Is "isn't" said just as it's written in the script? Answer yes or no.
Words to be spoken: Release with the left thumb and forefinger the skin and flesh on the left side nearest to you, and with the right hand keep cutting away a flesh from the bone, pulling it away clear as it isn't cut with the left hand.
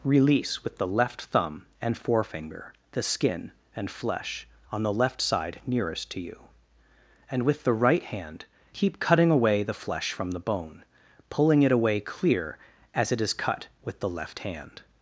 no